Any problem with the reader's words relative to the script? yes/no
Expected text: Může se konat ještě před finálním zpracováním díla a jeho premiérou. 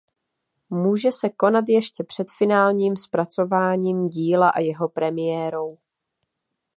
no